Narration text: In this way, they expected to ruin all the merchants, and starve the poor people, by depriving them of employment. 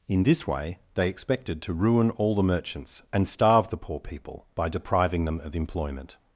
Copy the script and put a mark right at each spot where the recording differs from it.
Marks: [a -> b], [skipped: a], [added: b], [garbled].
In this way, they expected to ruin all the merchants, and starve the poor people, by depriving them of employment.